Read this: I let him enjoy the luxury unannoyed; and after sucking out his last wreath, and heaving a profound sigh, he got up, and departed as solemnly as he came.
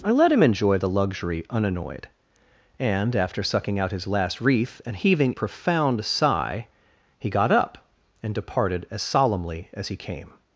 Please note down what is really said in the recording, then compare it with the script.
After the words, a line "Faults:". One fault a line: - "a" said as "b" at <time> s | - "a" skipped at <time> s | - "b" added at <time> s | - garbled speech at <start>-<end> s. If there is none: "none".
I let him enjoy the luxury unannoyed; and after sucking out his last wreath, and heaving profound sigh, he got up, and departed as solemnly as he came.
Faults:
- "a" skipped at 5.3 s